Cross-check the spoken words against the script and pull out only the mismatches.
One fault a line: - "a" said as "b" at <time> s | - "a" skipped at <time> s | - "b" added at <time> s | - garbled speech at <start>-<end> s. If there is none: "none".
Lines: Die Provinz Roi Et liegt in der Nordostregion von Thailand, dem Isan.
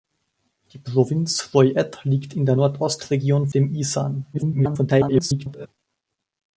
- "von Thailand" skipped at 3.5 s
- garbled speech at 4.3-5.7 s